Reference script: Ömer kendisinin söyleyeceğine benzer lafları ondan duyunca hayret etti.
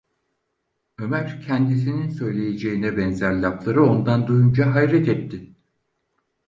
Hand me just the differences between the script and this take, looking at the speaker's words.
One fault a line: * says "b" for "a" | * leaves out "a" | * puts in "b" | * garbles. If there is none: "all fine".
all fine